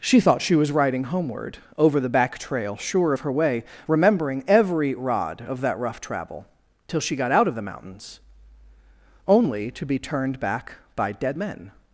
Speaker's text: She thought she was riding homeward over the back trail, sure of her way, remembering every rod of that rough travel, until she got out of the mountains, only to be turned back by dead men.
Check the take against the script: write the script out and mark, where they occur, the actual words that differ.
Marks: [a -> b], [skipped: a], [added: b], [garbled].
She thought she was riding homeward over the back trail, sure of her way, remembering every rod of that rough travel, [until -> till] she got out of the mountains, only to be turned back by dead men.